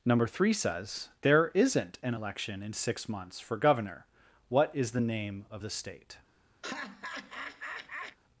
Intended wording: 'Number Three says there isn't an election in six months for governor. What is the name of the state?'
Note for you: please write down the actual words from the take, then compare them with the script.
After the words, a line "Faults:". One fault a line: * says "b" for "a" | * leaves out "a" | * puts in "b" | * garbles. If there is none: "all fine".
'Number Three says there isn't an election in six months for governor. What is the name of the state?'
Faults:
all fine